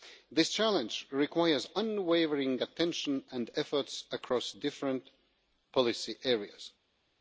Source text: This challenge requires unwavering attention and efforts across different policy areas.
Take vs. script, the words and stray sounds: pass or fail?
pass